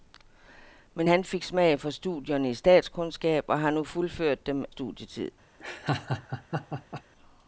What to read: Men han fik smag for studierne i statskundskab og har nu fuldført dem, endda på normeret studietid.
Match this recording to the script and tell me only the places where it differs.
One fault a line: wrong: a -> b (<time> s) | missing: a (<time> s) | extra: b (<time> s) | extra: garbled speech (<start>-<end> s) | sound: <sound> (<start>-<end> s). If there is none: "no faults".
missing: endda på normeret (4.6 s)
sound: laugh (5.6-7.0 s)